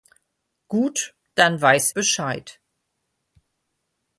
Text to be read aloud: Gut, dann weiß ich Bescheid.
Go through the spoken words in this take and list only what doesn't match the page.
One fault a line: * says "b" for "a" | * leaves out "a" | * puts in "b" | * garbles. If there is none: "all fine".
* leaves out "ich"